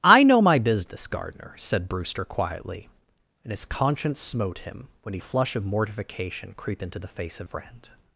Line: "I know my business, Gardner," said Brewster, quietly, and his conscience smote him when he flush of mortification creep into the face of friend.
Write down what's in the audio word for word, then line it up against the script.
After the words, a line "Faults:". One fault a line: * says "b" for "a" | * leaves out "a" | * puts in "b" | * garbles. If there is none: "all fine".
"I know my business, Gardner," said Brewster, quietly, and his conscience smote him when he flush of mortification creep into the face of friend.
Faults:
all fine